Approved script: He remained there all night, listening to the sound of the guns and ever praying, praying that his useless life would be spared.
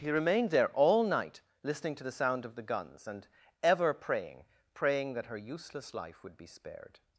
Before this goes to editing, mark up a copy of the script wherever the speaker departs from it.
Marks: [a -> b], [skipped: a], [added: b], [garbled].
He remained there all night, listening to the sound of the guns and ever praying, praying that [his -> her] useless life would be spared.